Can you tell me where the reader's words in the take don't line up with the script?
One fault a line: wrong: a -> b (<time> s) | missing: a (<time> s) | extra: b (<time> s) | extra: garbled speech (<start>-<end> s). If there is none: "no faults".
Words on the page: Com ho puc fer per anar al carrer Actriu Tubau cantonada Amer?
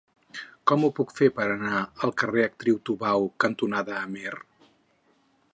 no faults